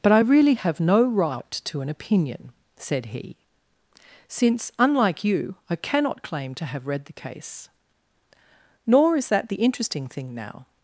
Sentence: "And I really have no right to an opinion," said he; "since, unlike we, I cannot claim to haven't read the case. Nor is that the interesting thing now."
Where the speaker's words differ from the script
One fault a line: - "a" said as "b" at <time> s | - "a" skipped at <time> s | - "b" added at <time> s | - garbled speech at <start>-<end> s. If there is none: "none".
- "And" said as "But" at 0.0 s
- "we" said as "you" at 5.2 s
- "haven't" said as "have" at 6.7 s